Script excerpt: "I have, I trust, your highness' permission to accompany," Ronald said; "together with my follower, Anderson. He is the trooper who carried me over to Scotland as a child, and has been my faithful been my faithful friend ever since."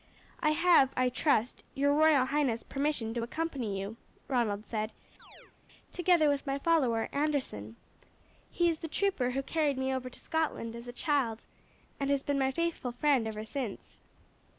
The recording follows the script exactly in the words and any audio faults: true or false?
false